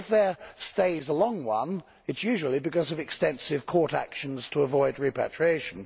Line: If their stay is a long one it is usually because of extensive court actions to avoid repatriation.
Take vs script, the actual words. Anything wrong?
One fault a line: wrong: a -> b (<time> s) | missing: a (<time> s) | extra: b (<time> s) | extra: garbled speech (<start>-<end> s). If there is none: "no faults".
no faults